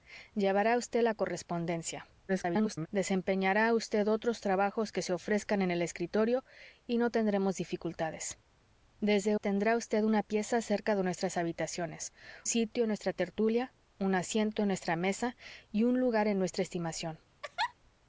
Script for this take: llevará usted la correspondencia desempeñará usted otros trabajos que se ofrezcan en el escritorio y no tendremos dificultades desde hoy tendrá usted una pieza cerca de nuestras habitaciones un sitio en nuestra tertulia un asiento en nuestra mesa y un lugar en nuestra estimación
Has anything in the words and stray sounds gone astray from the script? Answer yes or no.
yes